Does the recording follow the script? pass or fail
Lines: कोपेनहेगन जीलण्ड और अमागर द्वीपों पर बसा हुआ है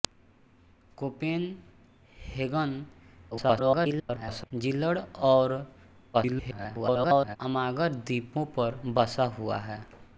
fail